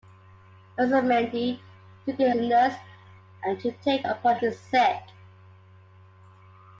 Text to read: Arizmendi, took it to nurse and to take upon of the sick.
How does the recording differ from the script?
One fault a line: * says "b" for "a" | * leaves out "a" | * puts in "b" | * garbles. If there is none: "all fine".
all fine